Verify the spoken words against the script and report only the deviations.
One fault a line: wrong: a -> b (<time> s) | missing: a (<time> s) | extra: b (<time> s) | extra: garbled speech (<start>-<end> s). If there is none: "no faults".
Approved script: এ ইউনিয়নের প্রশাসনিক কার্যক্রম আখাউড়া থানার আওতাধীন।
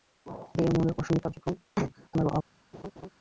missing: আখাউড়া (1.6 s)